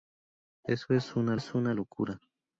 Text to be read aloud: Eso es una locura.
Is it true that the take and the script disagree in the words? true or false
true